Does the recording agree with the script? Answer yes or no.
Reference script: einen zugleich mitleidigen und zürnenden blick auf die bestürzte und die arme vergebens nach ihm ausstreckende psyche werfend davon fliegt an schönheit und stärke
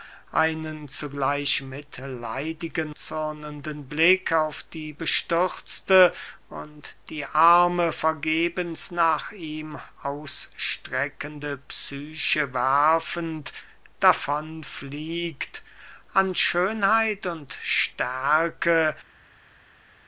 no